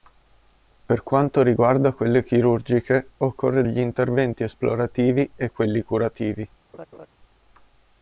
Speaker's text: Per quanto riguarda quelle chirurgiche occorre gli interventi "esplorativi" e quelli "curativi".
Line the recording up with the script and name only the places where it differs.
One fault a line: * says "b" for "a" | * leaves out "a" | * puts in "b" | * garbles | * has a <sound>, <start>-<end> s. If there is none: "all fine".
* has a laugh, 6.7-7.1 s